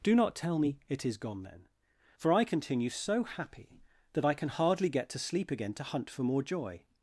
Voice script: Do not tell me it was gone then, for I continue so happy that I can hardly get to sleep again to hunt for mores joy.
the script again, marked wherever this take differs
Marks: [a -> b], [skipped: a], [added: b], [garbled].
Do not tell me it [was -> is] gone then, for I continue so happy that I can hardly get to sleep again to hunt for [mores -> more] joy.